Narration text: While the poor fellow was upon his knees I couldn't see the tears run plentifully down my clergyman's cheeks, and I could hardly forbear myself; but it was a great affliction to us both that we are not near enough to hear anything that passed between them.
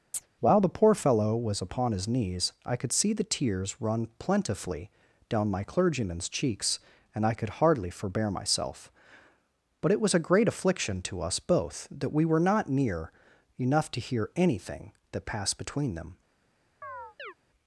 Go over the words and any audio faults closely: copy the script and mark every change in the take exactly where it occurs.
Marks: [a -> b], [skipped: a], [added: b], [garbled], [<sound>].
[chirp] While the poor fellow was upon his knees I [couldn't -> could] see the tears run plentifully down my clergyman's cheeks, and I could hardly forbear myself; but it was a great affliction to us both that we [are -> were] not near enough to hear anything that passed between them. [chirp]